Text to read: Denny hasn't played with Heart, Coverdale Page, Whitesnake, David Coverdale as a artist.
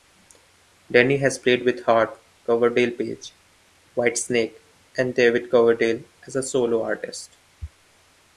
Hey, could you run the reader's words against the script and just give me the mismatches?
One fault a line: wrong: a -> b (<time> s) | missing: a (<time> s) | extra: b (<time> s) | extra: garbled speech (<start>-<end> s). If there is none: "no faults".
wrong: hasn't -> has (1.2 s)
extra: and (5.0 s)
extra: solo (6.4 s)